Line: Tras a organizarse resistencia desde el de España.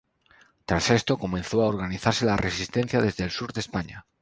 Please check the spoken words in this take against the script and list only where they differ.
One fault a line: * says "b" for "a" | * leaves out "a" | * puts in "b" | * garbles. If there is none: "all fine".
* puts in "esto comenzó"
* puts in "la"
* puts in "sur"